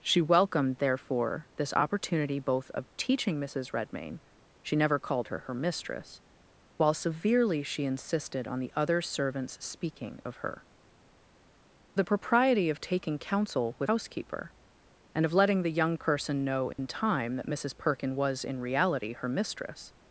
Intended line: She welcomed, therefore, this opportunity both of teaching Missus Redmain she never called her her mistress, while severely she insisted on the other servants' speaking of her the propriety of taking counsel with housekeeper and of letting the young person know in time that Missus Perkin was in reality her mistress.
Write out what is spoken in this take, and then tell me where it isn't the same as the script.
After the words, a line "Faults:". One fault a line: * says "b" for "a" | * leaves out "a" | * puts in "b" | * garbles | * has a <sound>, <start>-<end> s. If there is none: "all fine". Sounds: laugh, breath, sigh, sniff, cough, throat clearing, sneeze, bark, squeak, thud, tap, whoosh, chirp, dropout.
She welcomed, therefore, this opportunity both of teaching Missus Redmain she never called her her mistress, while severely she insisted on the other servants' speaking of her the propriety of taking counsel with housekeeper and of letting the young person know in time that Missus Perkin was in reality her mistress.
Faults:
* has a dropout, 16.7-16.8 s